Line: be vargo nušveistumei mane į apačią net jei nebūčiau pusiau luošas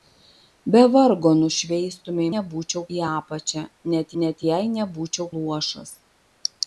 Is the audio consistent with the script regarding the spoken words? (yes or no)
no